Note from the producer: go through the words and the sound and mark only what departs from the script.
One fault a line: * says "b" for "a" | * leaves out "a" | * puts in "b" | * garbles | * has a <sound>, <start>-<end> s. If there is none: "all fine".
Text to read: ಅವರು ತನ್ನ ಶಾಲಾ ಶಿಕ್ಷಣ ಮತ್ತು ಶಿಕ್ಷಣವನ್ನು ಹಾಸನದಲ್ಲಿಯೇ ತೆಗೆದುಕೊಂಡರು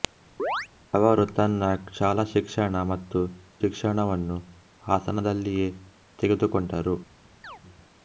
* has a chirp, 0.4-0.7 s
* has a chirp, 7.4-7.6 s